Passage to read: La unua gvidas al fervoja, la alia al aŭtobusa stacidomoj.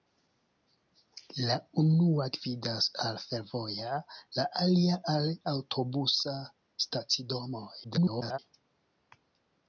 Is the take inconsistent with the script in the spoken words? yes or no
yes